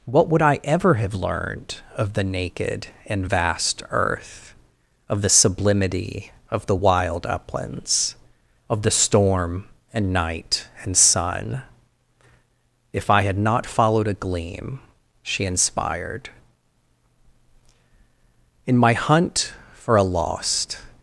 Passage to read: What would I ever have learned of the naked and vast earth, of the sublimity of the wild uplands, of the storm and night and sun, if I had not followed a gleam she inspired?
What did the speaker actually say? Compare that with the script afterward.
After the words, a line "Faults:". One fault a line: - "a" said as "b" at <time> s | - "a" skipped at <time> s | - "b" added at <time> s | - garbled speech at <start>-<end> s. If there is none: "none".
What would I ever have learned of the naked and vast earth, of the sublimity of the wild uplands, of the storm and night and sun, if I had not followed a gleam she inspired? In my hunt for a lost
Faults:
- "In my hunt for a lost" added at 18.7 s